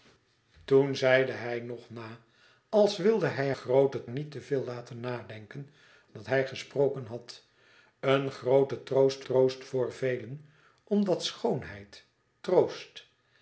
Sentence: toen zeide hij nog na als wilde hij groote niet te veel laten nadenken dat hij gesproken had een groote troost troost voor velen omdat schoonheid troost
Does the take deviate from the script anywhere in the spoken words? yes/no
no